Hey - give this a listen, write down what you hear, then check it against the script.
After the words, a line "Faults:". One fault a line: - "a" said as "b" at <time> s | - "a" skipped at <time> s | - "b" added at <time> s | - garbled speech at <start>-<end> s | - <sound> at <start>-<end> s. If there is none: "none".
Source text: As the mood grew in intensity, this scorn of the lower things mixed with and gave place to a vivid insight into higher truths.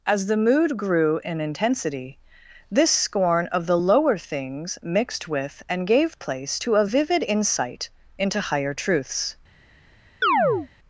As the mood grew in intensity, this scorn of the lower things mixed with and gave place to a vivid insight into higher truths.
Faults:
- chirp at 10.2-10.7 s